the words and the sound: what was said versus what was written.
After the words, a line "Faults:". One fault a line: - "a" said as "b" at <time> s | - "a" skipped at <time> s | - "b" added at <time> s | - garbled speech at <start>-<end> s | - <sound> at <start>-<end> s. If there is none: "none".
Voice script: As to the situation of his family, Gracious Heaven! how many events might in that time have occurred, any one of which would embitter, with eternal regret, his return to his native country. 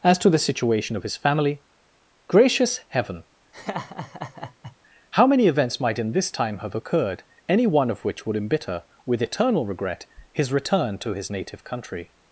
As to the situation of his family, Gracious Heaven! how many events might in this time have occurred, any one of which would embitter, with eternal regret, his return to his native country.
Faults:
- laugh at 3.5-4.8 s
- "that" said as "this" at 6.1 s